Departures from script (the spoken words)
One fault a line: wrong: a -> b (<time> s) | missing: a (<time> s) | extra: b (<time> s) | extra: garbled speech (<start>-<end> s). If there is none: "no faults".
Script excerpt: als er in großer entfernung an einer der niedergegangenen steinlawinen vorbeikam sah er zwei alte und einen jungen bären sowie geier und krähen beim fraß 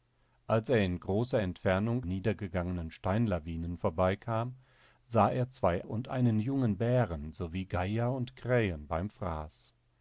missing: an einer der (2.1 s)
missing: alte (5.8 s)